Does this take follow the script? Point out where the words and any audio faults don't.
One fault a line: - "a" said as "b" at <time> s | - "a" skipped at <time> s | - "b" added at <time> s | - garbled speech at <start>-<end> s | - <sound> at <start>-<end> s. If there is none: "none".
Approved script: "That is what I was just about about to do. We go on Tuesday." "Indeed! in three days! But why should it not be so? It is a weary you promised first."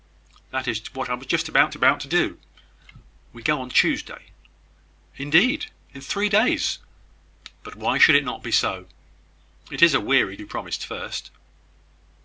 none